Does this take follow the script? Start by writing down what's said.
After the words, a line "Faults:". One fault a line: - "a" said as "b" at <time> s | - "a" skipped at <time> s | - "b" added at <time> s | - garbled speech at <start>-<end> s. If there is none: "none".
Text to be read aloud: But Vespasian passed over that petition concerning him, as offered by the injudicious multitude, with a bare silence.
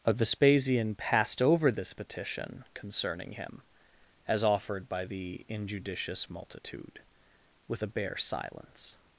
But Vespasian passed over this petition concerning him, as offered by the injudicious multitude, with a bare silence.
Faults:
- "that" said as "this" at 1.7 s